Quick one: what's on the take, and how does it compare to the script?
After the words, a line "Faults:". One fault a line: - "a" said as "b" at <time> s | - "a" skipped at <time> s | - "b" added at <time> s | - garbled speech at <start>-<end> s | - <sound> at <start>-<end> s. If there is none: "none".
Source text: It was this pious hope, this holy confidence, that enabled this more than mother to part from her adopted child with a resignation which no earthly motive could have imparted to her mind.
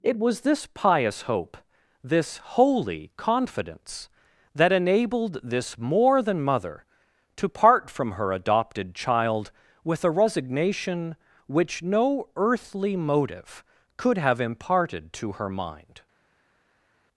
It was this pious hope, this holy confidence, that enabled this more than mother to part from her adopted child with a resignation which no earthly motive could have imparted to her mind.
Faults:
none